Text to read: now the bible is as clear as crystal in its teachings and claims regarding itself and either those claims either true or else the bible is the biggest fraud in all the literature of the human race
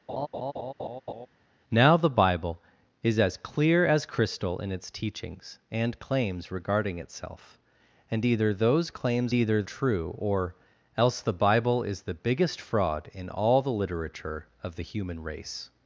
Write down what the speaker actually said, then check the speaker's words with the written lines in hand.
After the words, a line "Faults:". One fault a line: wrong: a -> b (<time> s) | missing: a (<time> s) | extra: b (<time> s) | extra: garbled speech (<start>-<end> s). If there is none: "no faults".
now the bible is as clear as crystal in its teachings and claims regarding itself and either those claims either true or else the bible is the biggest fraud in all the literature of the human race
Faults:
no faults